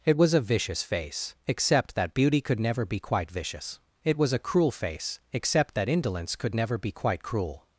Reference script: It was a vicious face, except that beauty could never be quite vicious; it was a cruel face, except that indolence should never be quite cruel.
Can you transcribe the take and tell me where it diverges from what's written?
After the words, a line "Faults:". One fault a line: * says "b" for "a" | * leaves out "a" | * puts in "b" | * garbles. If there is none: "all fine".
It was a vicious face, except that beauty could never be quite vicious; it was a cruel face, except that indolence could never be quite cruel.
Faults:
* says "could" for "should"